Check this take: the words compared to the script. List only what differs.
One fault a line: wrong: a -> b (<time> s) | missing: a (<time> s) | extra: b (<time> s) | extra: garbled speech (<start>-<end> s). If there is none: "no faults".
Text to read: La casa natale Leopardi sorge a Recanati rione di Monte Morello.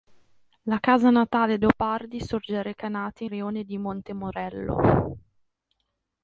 no faults